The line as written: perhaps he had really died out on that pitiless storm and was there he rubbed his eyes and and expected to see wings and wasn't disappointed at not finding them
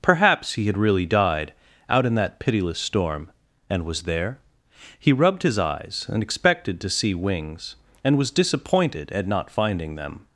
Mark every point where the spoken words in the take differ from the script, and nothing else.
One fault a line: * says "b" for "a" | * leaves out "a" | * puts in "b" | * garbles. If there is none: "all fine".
* says "in" for "on"
* leaves out "and"
* says "was" for "wasn't"